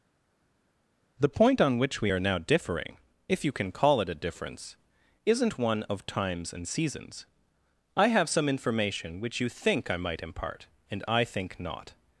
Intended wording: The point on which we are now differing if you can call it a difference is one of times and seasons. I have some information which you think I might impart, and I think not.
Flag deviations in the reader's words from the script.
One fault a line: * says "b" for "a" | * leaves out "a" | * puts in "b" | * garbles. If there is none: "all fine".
* says "isn't" for "is"